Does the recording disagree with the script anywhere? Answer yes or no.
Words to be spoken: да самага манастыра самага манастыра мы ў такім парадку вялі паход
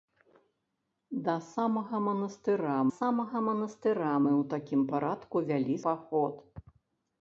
no